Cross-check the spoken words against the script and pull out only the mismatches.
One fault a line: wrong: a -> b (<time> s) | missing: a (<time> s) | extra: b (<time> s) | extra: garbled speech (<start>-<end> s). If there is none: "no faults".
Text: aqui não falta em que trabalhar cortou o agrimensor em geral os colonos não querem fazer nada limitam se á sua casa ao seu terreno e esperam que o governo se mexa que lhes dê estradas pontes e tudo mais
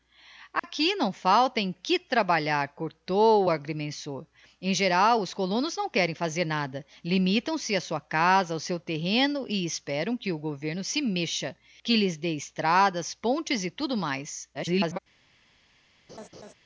extra: garbled speech (14.5-15.0 s)